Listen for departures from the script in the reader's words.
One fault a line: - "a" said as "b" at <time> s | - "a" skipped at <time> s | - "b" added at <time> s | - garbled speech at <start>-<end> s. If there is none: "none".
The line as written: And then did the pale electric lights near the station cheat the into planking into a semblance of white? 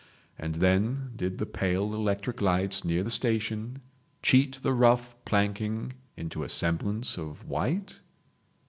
- "into" said as "rough" at 4.7 s